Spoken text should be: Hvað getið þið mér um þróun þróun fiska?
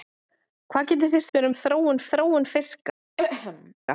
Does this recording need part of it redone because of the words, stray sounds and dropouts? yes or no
yes